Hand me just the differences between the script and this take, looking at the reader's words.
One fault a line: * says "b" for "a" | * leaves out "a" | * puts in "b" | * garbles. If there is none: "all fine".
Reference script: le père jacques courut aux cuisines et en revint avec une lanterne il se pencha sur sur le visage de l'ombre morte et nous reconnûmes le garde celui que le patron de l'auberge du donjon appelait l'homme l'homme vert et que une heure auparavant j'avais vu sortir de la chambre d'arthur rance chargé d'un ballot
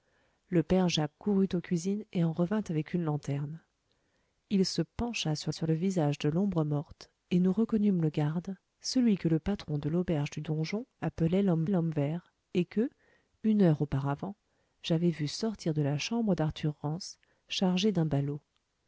all fine